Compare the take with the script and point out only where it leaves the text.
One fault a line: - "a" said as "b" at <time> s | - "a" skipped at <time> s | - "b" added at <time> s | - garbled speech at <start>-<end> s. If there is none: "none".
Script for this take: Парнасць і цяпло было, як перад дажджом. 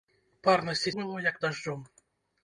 - "цяпло" skipped at 0.9 s
- "перад" skipped at 1.4 s